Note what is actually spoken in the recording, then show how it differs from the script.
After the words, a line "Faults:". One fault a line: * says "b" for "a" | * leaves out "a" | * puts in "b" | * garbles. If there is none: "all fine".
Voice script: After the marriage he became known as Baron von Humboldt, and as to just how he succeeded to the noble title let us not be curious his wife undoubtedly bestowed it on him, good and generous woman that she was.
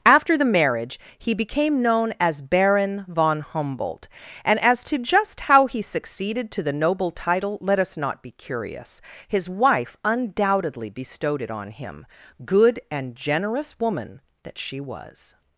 After the marriage he became known as Baron von Humboldt, and as to just how he succeeded to the noble title let us not be curious his wife undoubtedly bestowed it on him, good and generous woman that she was.
Faults:
all fine